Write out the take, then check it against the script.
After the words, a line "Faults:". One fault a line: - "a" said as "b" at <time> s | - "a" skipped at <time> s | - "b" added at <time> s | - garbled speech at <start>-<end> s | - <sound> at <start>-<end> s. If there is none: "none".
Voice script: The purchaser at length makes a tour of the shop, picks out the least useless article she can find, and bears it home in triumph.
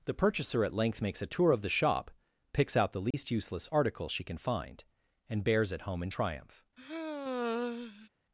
The purchaser at length makes a tour of the shop, picks out the least useless article she can find, and bears it home in triumph.
Faults:
- dropout at 3.1-3.1 s
- sigh at 6.8-8.1 s